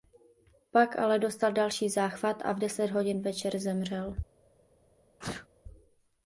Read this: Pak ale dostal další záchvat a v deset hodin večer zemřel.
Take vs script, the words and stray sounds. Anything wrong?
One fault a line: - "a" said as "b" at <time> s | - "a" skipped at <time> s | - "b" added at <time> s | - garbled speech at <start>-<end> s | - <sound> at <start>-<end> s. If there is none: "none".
- sneeze at 5.2-5.5 s